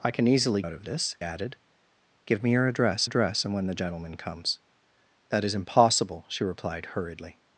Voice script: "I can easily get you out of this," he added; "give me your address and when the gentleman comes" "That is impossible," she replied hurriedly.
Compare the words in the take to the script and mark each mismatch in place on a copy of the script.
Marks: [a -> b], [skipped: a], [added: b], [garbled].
"I can easily [skipped: get you] out of this," [skipped: he] added; "give me your address [added: address] and when the gentleman comes" "That is impossible," she replied hurriedly.